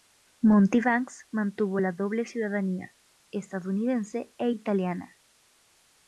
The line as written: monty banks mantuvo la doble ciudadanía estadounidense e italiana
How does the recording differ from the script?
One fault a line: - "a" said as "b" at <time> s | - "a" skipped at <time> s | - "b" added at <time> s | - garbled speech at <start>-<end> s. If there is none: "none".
none